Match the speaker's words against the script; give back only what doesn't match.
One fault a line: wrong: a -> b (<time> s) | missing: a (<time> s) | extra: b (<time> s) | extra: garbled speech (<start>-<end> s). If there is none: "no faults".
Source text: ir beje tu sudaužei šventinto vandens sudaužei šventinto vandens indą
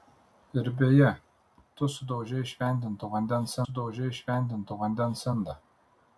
no faults